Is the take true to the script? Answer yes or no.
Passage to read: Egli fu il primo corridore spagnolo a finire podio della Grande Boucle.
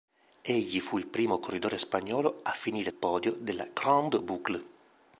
yes